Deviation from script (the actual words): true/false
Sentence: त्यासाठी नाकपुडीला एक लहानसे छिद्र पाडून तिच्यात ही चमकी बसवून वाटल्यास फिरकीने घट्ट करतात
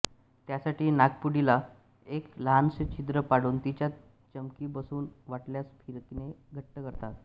true